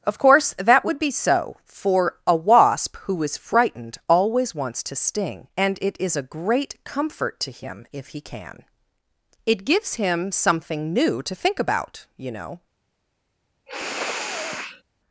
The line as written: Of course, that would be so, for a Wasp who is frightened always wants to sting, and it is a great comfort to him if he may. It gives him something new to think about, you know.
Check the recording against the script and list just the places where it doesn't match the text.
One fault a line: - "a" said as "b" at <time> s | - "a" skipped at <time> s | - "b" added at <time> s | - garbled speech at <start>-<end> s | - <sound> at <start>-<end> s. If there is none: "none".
- "may" said as "can" at 8.2 s
- sniff at 13.7-14.8 s